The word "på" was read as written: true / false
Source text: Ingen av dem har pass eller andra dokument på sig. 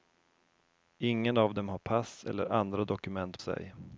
false